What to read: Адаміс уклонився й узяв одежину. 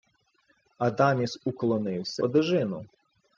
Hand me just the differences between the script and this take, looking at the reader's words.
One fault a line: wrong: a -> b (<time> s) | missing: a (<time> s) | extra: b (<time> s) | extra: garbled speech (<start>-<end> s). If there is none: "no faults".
missing: й узяв (2.2 s)